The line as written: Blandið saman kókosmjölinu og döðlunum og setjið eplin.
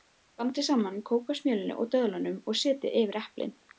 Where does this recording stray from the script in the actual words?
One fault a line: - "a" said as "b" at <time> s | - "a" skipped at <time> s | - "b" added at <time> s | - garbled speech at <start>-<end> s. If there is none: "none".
- "yfir" added at 3.0 s